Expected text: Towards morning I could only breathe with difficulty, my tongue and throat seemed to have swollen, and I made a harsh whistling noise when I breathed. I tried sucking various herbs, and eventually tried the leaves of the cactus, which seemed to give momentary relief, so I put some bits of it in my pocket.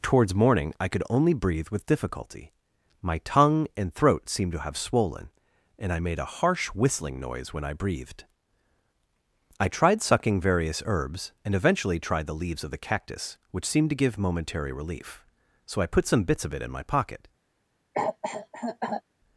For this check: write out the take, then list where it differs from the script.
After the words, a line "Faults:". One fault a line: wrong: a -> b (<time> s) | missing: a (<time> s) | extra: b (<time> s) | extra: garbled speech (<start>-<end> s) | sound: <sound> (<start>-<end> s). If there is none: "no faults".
Towards morning I could only breathe with difficulty, my tongue and throat seemed to have swollen, and I made a harsh whistling noise when I breathed. I tried sucking various herbs, and eventually tried the leaves of the cactus, which seemed to give momentary relief, so I put some bits of it in my pocket.
Faults:
sound: cough (17.9-19.0 s)